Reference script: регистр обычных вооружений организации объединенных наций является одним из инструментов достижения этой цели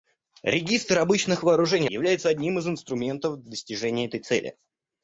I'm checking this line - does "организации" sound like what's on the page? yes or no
no